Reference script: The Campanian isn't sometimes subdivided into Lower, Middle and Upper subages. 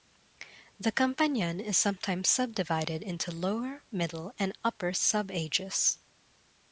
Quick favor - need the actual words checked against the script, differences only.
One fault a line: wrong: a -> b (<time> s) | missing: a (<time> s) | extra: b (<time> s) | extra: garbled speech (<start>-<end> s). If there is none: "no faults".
wrong: isn't -> is (1.6 s)